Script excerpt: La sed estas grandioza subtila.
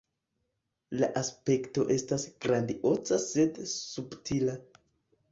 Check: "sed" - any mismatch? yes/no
yes